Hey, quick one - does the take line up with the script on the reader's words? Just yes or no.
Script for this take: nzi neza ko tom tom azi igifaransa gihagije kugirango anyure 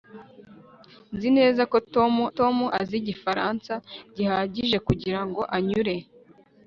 yes